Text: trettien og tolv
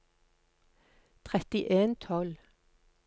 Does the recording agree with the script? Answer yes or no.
yes